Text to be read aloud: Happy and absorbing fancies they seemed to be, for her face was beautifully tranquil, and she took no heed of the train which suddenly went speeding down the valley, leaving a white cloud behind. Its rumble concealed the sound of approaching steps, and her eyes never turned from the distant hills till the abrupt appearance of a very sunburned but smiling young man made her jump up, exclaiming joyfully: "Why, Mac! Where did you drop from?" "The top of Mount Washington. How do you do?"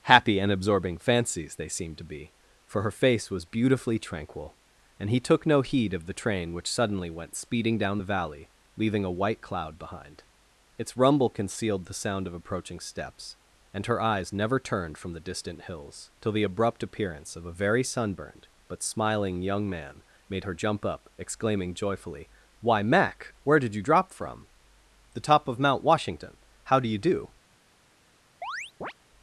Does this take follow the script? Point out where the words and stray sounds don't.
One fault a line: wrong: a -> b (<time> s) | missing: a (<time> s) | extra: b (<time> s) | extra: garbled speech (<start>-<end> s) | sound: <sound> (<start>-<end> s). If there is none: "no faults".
wrong: she -> he (5.1 s)
sound: chirp (28.4-28.9 s)